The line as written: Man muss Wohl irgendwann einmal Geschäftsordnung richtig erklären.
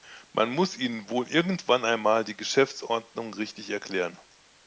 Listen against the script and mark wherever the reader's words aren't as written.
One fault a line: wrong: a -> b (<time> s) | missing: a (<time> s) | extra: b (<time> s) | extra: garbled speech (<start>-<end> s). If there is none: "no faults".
extra: Ihnen (0.8 s)
extra: die (2.2 s)